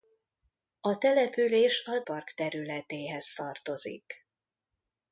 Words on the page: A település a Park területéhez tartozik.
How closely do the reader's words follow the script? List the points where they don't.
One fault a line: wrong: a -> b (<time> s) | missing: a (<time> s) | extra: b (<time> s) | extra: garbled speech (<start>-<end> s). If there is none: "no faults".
no faults